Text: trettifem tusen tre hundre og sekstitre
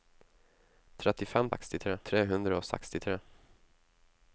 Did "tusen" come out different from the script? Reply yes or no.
yes